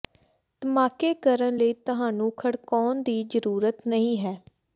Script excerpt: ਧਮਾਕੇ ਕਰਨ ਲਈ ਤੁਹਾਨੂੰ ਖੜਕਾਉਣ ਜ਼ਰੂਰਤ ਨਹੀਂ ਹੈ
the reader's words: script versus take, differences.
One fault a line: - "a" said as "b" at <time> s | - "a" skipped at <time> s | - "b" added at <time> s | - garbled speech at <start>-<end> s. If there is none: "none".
- "ਦੀ" added at 3.0 s